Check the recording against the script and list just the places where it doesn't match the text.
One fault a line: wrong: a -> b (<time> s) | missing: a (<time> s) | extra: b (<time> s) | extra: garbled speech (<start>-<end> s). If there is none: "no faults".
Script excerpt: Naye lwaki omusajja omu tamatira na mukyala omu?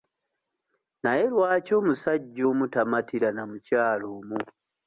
no faults